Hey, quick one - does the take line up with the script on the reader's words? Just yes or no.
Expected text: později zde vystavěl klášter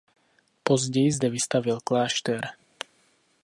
yes